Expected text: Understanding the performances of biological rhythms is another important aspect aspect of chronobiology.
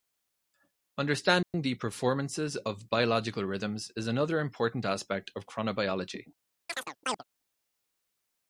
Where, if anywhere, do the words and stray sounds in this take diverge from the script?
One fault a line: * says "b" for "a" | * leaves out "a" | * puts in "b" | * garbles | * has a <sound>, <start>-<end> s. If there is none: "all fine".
* has a dropout, 1.4-1.5 s
* leaves out "aspect"
* has a chirp, 6.7-7.2 s